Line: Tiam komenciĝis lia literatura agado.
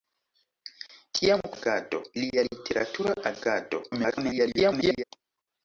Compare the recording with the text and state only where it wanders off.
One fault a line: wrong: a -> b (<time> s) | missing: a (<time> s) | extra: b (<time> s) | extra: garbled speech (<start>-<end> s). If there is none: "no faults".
wrong: komenciĝis -> agado (1.6 s)
extra: garbled speech (3.9-5.0 s)